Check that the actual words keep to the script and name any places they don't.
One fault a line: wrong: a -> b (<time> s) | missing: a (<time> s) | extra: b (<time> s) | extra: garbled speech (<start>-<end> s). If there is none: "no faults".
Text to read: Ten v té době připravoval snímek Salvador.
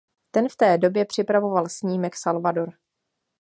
no faults